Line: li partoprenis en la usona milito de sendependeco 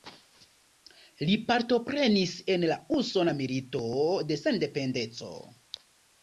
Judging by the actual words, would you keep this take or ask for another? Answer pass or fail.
pass